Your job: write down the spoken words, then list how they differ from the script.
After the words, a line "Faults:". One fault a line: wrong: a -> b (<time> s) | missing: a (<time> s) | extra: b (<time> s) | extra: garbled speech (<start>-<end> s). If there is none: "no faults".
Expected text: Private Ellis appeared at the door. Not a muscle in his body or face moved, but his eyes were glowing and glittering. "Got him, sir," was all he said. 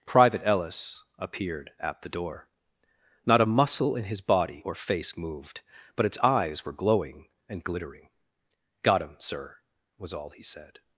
Private Ellis appeared at the door. Not a muscle in his body or face moved, but its eyes were glowing and glittering. "Got him, sir," was all he said.
Faults:
wrong: his -> its (6.0 s)